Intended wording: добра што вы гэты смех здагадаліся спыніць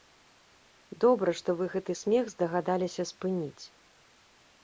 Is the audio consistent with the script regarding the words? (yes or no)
yes